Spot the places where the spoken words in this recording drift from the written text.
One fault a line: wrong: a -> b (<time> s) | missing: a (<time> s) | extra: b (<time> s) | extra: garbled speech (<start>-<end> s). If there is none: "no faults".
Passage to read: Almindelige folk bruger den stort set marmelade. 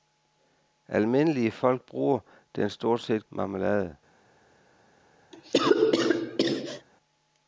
no faults